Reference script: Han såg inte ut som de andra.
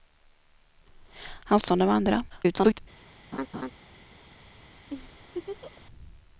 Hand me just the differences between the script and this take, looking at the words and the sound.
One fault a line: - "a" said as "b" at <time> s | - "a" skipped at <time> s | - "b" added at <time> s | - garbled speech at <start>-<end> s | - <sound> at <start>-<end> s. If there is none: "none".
- "såg inte ut" skipped at 1.6 s
- garbled speech at 2.3-2.8 s
- laugh at 3.3-3.7 s
- laugh at 4.9-5.9 s